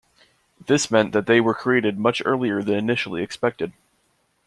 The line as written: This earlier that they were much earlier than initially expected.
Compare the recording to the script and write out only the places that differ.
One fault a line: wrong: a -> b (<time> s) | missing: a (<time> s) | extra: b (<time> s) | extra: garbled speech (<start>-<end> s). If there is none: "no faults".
wrong: earlier -> meant (0.9 s)
extra: created (1.5 s)